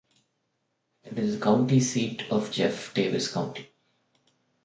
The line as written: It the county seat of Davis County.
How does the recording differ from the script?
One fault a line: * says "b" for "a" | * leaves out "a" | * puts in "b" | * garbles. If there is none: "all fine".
* puts in "is"
* puts in "Jeff"